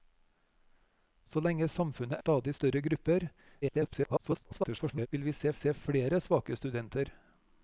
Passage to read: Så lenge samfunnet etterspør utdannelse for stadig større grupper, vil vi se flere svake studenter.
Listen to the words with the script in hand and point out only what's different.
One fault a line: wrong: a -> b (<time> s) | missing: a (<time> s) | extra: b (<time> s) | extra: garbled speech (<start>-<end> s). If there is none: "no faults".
missing: etterspør utdannelse for (2.2 s)
extra: garbled speech (3.6-5.1 s)
extra: se (5.5 s)